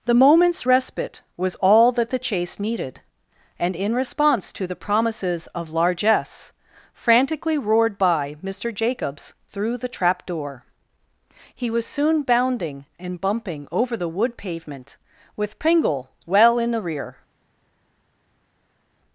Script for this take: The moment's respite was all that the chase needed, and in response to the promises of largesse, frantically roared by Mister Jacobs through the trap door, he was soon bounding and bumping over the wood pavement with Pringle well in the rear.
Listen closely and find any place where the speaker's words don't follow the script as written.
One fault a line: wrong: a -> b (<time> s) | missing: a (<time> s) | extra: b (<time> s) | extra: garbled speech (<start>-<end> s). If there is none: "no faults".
no faults